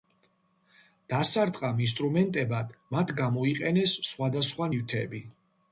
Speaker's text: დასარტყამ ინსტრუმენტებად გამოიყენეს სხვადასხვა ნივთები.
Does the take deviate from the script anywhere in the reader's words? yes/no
yes